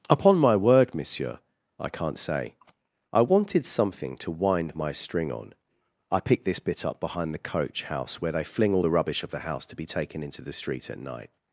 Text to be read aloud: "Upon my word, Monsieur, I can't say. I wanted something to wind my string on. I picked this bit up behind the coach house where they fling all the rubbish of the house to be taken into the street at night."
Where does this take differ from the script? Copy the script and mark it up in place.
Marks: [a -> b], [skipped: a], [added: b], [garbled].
"Upon my word, Monsieur, I can't say. I wanted something to wind my string on. I picked this bit up behind the coach house where they fling all the rubbish of the house to be taken into the street at night."